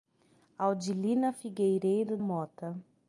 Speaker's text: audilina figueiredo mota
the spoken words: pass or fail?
pass